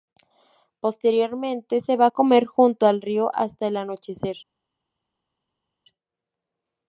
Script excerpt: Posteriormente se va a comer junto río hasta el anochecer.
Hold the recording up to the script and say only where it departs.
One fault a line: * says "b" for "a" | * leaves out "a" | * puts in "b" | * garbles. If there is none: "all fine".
* puts in "al"